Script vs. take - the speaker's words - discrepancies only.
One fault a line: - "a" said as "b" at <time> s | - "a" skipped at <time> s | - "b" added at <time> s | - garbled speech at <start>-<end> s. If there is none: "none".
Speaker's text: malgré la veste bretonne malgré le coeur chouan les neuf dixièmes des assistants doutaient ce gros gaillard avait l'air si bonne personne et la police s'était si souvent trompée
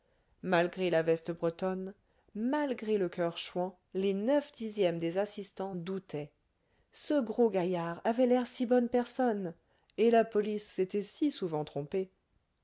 none